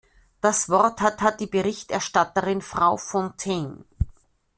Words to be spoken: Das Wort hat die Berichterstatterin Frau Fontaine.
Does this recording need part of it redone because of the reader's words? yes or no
yes